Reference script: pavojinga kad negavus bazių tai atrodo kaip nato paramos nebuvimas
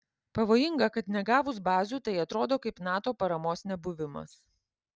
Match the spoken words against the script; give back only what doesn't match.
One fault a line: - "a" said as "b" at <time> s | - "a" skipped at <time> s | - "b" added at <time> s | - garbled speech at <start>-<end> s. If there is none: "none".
none